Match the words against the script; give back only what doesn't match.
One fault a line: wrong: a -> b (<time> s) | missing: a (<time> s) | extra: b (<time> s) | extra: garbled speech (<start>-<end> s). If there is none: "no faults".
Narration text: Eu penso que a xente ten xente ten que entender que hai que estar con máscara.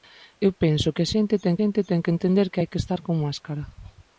no faults